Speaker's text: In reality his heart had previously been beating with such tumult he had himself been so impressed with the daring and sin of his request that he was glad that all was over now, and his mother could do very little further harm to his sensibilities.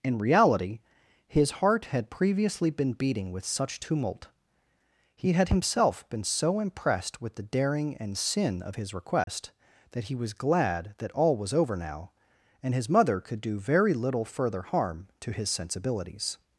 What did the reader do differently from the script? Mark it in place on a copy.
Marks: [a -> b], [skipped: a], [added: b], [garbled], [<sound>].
In reality his heart had previously been beating with such tumult he had himself been so impressed with the daring and sin of his request [dropout] that he was glad that all was over now, and his mother could do very little further harm to his sensibilities.